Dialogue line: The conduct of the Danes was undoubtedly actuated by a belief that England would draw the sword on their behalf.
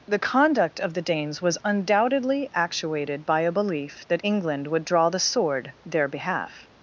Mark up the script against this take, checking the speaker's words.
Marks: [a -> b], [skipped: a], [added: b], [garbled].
The conduct of the Danes was undoubtedly actuated by a belief that England would draw the sword [skipped: on] their behalf.